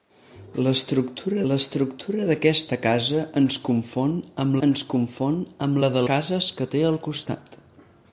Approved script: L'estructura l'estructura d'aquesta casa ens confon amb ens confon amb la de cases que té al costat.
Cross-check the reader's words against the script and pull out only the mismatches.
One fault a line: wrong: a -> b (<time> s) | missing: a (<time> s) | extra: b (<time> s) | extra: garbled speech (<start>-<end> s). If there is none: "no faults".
no faults